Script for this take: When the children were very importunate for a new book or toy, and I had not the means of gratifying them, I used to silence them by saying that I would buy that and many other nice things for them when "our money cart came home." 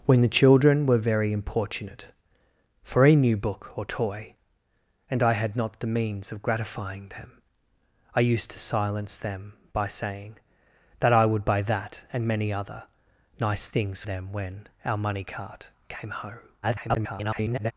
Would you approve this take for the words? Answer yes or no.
no